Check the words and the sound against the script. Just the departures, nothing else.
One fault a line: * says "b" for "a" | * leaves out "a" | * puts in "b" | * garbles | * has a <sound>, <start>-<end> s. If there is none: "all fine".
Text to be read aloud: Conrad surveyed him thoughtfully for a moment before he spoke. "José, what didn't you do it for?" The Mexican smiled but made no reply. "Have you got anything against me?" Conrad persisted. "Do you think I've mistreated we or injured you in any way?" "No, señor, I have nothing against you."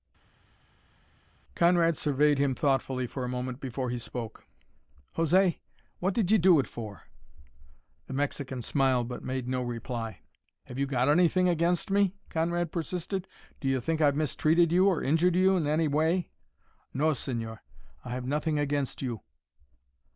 * says "did" for "didn't"
* says "you" for "we"